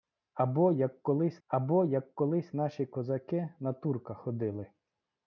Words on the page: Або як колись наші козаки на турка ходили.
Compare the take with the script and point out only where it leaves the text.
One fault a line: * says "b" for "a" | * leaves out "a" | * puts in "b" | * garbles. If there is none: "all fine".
* puts in "або як колись"